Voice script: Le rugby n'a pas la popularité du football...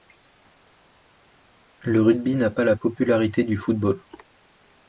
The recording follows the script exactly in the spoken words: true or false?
true